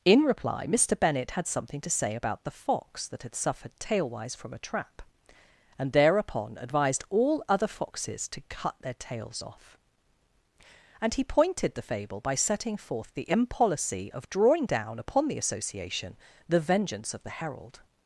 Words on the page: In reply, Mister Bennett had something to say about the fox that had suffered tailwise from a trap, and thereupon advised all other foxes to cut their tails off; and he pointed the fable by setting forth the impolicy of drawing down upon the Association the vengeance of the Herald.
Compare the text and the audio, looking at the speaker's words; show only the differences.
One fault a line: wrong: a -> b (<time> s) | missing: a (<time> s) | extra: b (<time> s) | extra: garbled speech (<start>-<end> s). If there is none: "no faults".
no faults